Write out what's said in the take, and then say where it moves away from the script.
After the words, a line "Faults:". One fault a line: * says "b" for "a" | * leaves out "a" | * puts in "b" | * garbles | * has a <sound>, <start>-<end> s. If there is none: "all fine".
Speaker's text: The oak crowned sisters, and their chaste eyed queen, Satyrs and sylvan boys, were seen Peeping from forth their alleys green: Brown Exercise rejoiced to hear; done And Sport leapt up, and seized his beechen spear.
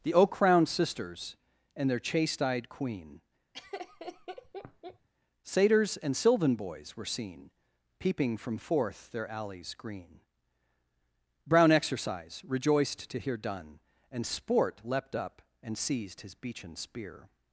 The oak crowned sisters, and their chaste eyed queen, Satyrs and sylvan boys, were seen Peeping from forth their alleys green: Brown Exercise rejoiced to hear; done And Sport leapt up, and seized his beechen spear.
Faults:
* has a laugh, 3.5-5.1 s